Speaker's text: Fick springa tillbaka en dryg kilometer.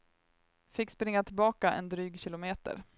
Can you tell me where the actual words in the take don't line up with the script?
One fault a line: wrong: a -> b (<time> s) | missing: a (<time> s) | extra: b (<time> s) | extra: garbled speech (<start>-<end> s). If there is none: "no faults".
no faults